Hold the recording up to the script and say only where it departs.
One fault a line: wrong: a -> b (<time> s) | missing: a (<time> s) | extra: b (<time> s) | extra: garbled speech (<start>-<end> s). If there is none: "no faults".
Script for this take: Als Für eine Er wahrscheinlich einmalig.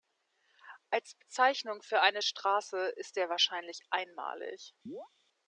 extra: Bezeichnung (1.1 s)
extra: Straße ist (2.2 s)